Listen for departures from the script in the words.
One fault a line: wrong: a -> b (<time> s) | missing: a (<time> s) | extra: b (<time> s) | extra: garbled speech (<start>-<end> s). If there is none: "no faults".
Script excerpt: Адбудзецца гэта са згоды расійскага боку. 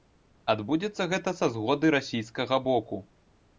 no faults